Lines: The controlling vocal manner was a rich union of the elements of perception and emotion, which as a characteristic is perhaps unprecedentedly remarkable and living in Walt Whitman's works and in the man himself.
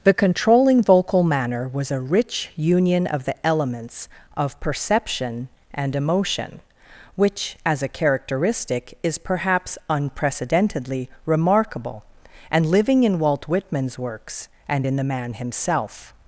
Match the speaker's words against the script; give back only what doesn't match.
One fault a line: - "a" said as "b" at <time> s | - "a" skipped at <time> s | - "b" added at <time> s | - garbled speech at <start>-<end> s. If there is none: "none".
none